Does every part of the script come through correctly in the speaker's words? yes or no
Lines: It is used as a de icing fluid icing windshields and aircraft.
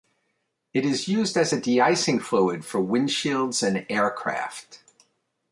no